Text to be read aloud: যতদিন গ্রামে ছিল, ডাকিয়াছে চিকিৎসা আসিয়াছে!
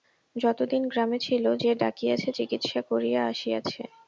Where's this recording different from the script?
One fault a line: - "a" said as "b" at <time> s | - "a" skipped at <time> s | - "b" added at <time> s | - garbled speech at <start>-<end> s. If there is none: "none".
- "যে" added at 1.6 s
- "করিয়া" added at 2.9 s